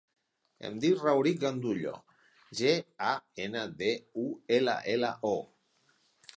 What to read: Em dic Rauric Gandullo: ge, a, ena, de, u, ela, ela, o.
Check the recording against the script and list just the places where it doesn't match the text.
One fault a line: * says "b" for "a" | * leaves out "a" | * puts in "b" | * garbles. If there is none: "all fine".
all fine